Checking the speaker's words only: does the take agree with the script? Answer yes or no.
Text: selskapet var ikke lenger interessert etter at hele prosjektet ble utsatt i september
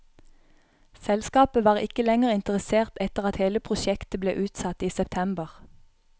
yes